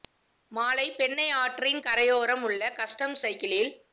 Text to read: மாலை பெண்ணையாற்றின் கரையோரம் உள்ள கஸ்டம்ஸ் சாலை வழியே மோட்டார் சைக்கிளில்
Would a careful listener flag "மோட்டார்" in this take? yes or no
yes